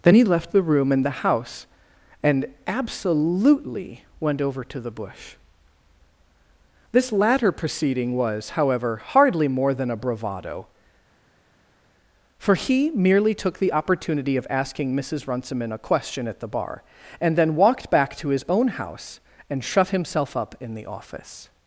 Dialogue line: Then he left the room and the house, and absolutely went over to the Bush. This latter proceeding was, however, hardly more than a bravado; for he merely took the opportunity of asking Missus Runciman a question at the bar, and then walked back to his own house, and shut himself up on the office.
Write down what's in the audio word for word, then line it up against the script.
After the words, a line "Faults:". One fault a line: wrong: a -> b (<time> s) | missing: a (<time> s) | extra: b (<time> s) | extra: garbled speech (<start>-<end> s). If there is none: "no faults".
Then he left the room and the house, and absolutely went over to the Bush. This latter proceeding was, however, hardly more than a bravado; for he merely took the opportunity of asking Missus Runciman a question at the bar, and then walked back to his own house, and shut himself up in the office.
Faults:
wrong: on -> in (20.6 s)